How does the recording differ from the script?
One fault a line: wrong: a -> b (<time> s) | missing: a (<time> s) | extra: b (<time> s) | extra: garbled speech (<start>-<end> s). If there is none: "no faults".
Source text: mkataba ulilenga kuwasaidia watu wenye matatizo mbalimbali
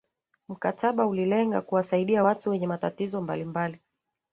no faults